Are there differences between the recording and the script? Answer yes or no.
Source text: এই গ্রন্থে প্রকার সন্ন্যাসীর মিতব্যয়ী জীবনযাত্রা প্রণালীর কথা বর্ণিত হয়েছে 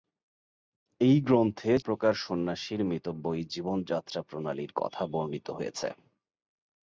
no